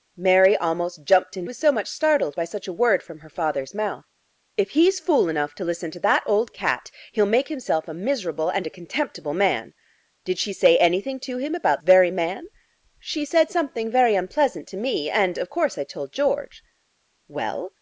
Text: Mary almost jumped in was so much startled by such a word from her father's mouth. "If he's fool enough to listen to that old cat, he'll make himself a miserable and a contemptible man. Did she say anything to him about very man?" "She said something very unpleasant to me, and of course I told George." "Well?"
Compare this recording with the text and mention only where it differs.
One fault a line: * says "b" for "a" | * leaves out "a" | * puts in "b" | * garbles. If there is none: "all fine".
all fine